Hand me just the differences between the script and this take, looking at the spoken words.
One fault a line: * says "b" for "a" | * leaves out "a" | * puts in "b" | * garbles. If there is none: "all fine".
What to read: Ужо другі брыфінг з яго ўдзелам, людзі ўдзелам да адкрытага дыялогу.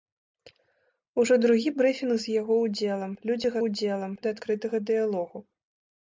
all fine